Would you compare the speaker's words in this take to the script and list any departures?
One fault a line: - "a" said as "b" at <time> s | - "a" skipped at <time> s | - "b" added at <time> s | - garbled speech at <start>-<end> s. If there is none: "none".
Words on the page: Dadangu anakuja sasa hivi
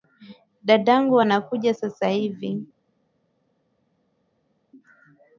none